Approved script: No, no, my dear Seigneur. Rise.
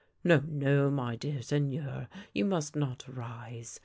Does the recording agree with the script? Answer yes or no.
no